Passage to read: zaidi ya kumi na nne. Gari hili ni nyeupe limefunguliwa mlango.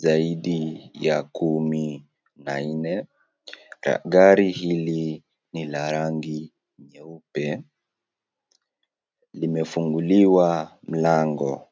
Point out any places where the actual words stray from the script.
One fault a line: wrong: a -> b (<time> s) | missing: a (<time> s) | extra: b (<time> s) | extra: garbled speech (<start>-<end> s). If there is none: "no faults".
extra: la rangi (5.7 s)